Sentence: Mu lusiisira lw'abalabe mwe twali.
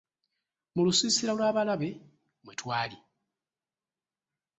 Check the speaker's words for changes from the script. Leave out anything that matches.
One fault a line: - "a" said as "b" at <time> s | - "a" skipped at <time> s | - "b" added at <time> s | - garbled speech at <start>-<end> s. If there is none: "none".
none